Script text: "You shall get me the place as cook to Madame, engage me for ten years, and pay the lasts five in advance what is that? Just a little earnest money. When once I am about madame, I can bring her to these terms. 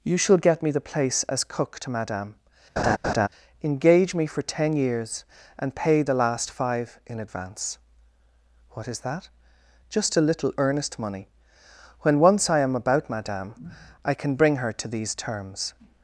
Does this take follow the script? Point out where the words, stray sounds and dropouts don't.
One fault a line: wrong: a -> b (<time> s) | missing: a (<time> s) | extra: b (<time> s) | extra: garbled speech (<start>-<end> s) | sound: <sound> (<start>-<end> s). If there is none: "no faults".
sound: laugh (2.8-3.3 s)
wrong: lasts -> last (6.1 s)